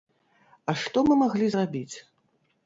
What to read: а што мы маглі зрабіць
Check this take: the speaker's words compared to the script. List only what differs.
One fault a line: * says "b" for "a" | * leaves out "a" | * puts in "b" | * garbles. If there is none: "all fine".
all fine